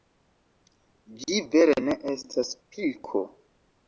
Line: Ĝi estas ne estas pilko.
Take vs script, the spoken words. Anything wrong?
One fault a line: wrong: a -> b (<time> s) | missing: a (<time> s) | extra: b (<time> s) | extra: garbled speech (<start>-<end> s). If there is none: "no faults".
wrong: estas -> vere (1.5 s)